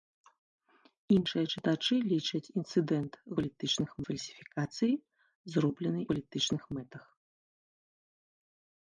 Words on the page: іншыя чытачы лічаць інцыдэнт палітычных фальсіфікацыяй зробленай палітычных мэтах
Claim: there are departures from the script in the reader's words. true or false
false